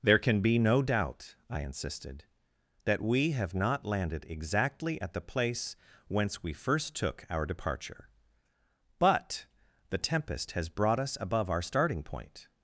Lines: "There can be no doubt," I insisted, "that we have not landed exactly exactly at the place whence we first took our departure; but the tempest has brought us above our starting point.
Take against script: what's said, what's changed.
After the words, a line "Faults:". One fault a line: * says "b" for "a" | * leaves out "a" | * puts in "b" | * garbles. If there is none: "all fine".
"There can be no doubt," I insisted, "that we have not landed exactly at the place whence we first took our departure; but the tempest has brought us above our starting point.
Faults:
* leaves out "exactly"